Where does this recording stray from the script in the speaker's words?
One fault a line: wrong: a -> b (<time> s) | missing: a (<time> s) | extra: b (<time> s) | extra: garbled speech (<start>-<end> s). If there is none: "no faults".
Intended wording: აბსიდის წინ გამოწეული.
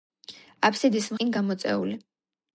no faults